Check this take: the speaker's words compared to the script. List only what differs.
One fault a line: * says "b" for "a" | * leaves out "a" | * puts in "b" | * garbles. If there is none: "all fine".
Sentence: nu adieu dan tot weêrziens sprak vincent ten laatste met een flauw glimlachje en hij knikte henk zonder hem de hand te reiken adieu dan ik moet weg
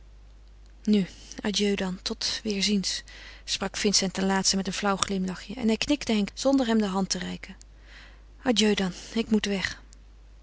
all fine